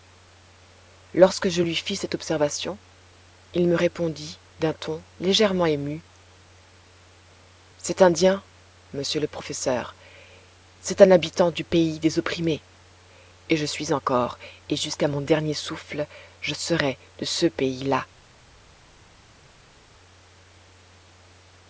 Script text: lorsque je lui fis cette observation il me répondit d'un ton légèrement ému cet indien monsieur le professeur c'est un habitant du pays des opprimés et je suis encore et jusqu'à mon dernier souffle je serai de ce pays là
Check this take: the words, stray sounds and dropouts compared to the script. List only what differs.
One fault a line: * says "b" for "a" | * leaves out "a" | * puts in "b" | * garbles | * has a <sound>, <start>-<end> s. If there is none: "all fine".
all fine